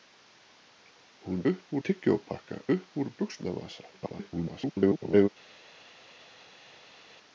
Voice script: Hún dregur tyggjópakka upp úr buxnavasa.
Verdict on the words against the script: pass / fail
fail